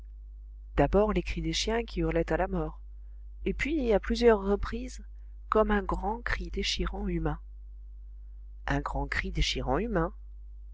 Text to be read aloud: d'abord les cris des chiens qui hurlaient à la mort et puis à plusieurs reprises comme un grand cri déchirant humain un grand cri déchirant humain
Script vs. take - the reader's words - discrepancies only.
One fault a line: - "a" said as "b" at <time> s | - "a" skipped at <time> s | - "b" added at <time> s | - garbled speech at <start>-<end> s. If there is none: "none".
none